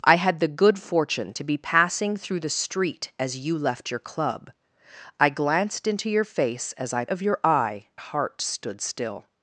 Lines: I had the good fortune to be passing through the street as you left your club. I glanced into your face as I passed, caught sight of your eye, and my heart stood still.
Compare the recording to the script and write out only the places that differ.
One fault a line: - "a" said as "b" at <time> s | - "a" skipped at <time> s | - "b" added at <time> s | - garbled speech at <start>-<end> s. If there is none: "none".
- "passed caught sight" skipped at 7.1 s
- "and my" skipped at 7.9 s